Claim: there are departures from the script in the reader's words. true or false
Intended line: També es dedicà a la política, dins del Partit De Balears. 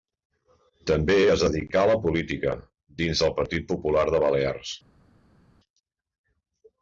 true